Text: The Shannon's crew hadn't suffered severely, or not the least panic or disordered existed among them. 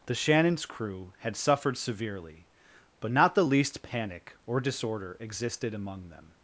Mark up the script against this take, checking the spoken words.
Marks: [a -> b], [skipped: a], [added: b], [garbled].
The Shannon's crew [hadn't -> had] suffered severely, [or -> but] not the least panic or [disordered -> disorder] existed among them.